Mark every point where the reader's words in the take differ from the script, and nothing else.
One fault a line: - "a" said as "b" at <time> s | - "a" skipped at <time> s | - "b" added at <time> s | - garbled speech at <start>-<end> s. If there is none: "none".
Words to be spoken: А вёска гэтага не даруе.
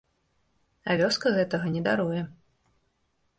none